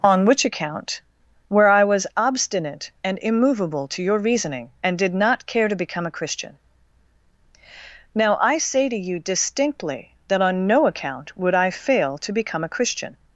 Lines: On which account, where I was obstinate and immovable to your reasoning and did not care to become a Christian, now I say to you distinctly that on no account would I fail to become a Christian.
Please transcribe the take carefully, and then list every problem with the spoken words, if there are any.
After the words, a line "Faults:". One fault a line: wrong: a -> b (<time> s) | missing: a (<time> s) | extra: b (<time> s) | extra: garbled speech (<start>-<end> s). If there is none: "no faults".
On which account, where I was obstinate and immovable to your reasoning and did not care to become a Christian, now I say to you distinctly that on no account would I fail to become a Christian.
Faults:
no faults